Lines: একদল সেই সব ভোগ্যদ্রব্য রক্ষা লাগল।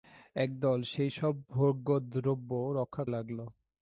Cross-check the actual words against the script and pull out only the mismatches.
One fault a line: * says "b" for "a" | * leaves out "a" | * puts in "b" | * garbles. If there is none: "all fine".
all fine